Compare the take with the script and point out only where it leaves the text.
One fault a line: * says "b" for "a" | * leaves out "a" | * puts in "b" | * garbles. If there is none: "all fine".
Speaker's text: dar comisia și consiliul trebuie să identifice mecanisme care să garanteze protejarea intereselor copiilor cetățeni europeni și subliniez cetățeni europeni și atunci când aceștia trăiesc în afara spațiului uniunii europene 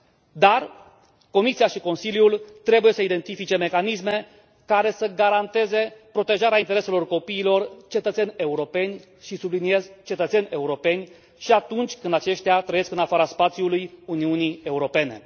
all fine